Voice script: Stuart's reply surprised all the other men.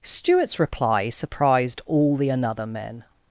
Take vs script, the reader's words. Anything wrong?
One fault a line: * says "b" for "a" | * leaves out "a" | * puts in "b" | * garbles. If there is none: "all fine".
* says "another" for "other"